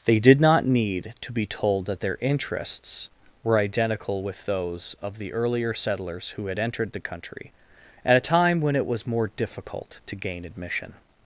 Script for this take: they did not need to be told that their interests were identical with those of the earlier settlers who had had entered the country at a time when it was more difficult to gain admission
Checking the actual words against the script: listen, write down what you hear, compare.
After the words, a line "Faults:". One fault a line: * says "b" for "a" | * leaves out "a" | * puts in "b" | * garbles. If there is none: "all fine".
they did not need to be told that their interests were identical with those of the earlier settlers who had entered the country at a time when it was more difficult to gain admission
Faults:
* leaves out "had"